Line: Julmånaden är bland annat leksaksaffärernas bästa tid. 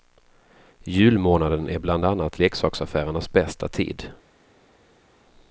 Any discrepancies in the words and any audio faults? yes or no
no